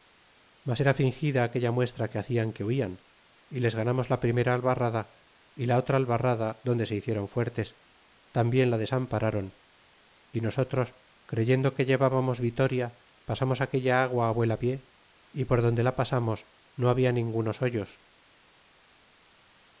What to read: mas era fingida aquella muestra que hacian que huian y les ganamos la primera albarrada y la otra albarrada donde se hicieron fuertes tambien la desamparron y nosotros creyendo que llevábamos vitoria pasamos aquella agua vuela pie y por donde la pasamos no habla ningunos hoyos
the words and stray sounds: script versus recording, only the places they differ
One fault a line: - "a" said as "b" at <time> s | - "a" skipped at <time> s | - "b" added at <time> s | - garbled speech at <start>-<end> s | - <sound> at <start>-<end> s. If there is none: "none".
none